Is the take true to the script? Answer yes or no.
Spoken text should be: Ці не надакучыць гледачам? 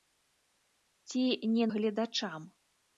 no